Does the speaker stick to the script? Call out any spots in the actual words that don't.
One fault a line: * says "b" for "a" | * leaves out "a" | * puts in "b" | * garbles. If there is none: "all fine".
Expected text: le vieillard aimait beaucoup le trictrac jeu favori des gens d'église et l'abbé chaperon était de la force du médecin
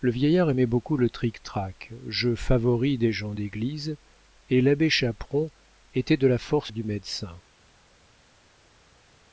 all fine